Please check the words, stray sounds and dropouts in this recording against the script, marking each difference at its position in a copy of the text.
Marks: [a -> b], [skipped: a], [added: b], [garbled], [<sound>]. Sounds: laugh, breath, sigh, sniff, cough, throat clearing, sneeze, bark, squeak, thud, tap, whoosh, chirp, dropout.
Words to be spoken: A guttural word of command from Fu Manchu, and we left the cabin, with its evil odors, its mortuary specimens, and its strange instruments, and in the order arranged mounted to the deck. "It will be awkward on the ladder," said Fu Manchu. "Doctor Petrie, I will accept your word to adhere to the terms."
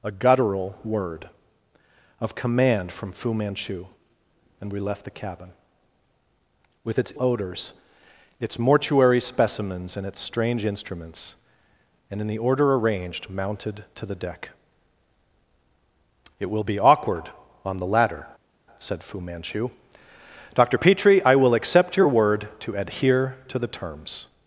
A guttural word of command from Fu Manchu, and we left the cabin, with its [skipped: evil] odors, its mortuary specimens, and its strange instruments, and in the order arranged mounted to the deck. "It will be awkward on the ladder," said Fu Manchu. "Doctor Petrie, I will accept your word to adhere to the terms."